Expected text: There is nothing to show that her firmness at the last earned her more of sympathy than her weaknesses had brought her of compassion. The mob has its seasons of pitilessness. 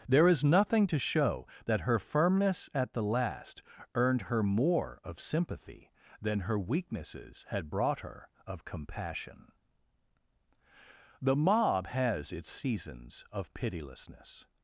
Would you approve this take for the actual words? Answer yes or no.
yes